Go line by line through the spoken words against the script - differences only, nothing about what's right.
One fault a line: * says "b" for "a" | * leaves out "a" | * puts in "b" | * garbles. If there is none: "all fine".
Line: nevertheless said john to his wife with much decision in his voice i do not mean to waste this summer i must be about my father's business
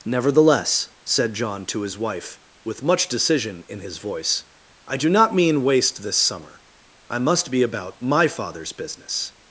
* leaves out "to"